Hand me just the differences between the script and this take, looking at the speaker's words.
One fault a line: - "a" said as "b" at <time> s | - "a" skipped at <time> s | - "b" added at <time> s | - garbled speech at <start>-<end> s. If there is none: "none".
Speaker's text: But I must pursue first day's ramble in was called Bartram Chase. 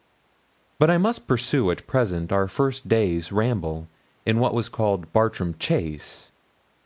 - "at present our" added at 1.7 s
- "what" added at 4.4 s